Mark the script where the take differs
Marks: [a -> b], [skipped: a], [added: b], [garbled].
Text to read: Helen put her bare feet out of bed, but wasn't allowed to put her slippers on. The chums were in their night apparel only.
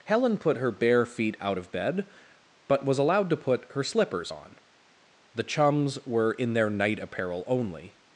Helen put her bare feet out of bed, but [wasn't -> was] allowed to put her slippers on. The chums were in their night apparel only.